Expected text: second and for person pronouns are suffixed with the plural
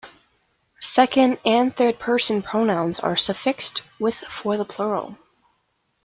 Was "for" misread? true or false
true